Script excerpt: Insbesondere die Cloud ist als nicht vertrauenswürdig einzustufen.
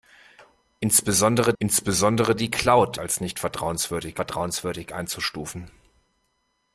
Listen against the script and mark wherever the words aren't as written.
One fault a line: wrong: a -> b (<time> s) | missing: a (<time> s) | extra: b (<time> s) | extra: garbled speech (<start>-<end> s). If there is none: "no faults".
extra: insbesondere (1.6 s)
missing: ist (3.0 s)
extra: vertrauenswürdig (4.1 s)